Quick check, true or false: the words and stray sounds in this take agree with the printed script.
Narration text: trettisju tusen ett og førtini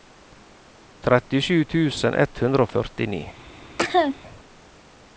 false